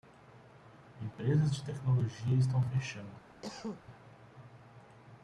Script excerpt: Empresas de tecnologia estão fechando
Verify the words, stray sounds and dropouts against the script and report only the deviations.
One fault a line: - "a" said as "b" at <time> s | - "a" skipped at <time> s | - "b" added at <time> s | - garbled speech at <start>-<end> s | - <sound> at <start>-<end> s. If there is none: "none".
- cough at 3.4-3.8 s